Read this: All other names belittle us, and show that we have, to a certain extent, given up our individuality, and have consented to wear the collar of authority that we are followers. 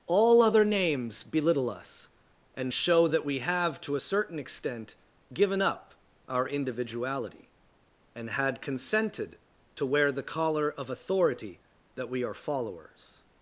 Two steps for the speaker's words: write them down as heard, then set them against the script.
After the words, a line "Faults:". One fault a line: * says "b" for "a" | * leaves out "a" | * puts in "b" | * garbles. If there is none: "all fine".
All other names belittle us, and show that we have, to a certain extent, given up our individuality, and had consented to wear the collar of authority that we are followers.
Faults:
* says "had" for "have"